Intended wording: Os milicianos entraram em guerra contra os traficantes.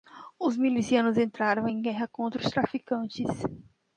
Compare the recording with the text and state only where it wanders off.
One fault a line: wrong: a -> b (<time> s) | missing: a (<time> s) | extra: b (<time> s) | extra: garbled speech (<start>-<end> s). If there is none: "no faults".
no faults